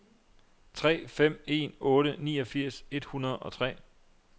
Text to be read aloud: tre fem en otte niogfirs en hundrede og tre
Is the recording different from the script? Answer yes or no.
yes